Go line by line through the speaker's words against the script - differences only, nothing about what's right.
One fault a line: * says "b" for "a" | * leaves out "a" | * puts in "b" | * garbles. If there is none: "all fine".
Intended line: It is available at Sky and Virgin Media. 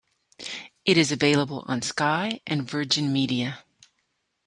* says "on" for "at"